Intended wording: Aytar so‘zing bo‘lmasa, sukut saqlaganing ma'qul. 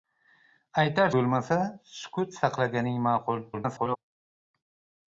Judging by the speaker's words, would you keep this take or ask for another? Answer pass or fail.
fail